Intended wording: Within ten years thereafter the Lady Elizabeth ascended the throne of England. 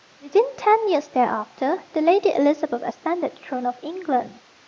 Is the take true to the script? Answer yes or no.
yes